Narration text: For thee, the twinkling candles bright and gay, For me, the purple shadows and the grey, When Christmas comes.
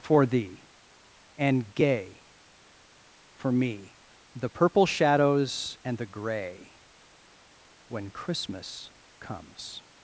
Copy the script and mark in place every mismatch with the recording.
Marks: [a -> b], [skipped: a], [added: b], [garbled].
For thee, [skipped: the twinkling candles bright] and gay, For me, the purple shadows and the grey, When Christmas comes.